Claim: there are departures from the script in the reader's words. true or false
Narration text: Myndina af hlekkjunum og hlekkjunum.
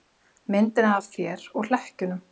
true